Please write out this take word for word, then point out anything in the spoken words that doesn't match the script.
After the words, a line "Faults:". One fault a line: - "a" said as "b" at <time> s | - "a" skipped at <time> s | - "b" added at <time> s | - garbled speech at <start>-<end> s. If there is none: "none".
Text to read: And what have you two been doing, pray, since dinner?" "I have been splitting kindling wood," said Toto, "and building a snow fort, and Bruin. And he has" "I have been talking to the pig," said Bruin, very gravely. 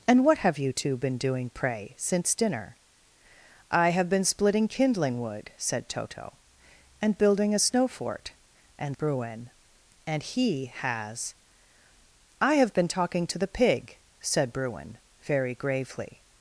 And what have you two been doing, pray, since dinner?" "I have been splitting kindling wood," said Toto, "and building a snow fort, and Bruin. And he has" "I have been talking to the pig," said Bruin, very gravely.
Faults:
none